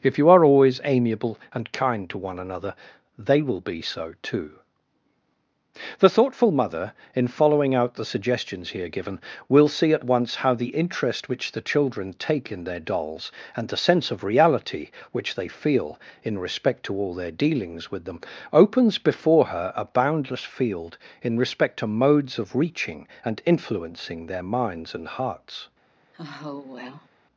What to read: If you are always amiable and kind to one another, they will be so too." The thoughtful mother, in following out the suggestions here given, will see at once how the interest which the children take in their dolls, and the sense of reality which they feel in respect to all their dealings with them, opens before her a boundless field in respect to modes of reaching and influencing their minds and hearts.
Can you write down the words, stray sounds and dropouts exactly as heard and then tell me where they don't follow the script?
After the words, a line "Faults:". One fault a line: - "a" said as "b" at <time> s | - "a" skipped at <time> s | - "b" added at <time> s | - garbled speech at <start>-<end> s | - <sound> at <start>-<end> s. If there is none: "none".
If you are always amiable and kind to one another, they will be so too." The thoughtful mother, in following out the suggestions here given, will see at once how the interest which the children take in their dolls, and the sense of reality which they feel in respect to all their dealings with them, opens before her a boundless field in respect to modes of reaching and influencing their minds and hearts.
Faults:
- sigh at 26.1-27.1 s